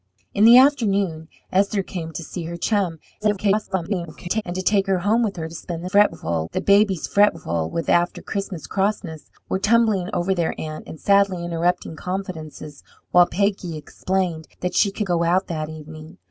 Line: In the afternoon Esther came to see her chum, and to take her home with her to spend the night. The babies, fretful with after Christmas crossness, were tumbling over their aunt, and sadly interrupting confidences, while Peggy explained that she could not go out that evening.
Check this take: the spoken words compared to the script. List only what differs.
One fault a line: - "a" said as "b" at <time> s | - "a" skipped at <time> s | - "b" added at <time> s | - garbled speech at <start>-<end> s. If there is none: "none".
- garbled speech at 3.2-4.4 s
- "night" said as "fretful" at 5.9 s
- "not" skipped at 15.1 s